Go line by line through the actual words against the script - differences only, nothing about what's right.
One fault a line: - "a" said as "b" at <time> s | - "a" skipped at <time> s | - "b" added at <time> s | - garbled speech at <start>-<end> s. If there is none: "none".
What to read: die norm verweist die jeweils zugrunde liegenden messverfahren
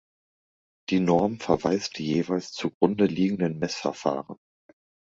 none